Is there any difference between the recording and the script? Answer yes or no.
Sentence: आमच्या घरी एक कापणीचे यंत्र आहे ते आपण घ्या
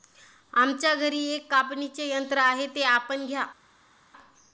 no